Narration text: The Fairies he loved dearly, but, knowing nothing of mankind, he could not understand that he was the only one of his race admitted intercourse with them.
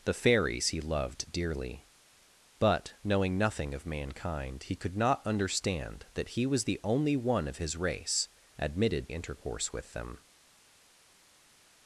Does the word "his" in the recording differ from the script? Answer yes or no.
no